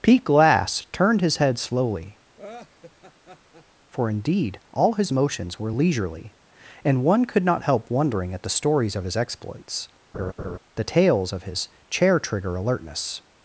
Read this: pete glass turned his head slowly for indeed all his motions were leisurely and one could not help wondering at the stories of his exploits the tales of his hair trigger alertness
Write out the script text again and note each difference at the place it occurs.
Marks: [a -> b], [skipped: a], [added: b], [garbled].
pete glass turned his head slowly for indeed all his motions were leisurely and one could not help wondering at the stories of his exploits the tales of his [hair -> chair] trigger alertness